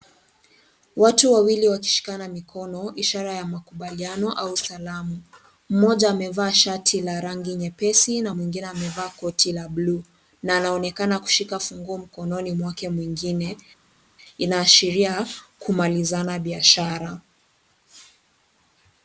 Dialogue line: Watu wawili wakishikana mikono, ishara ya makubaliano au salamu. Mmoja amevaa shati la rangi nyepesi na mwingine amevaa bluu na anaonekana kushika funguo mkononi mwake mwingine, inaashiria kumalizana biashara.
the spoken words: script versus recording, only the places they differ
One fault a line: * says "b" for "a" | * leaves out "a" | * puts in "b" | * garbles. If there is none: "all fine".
* puts in "koti la"